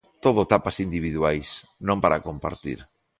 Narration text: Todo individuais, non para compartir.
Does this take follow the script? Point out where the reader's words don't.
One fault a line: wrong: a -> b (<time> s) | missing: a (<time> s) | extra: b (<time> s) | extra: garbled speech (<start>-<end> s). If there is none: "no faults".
extra: tapas (0.5 s)